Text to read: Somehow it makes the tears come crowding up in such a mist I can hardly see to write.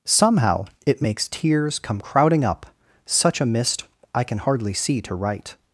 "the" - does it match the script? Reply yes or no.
no